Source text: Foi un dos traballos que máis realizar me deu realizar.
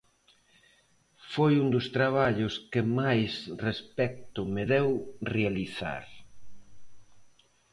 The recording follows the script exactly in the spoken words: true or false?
false